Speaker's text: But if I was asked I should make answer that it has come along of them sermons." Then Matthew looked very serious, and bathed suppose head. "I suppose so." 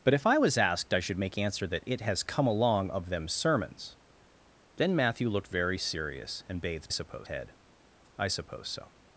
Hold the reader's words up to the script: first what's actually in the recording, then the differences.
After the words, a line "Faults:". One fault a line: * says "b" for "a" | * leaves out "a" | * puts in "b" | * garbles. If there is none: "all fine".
But if I was asked I should make answer that it has come along of them sermons." Then Matthew looked very serious, and bathed suppose head. "I suppose so."
Faults:
all fine